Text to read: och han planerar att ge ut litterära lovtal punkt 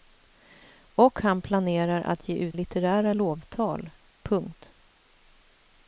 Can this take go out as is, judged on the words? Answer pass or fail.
pass